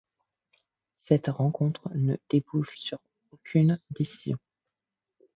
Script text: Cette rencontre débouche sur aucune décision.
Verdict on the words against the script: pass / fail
fail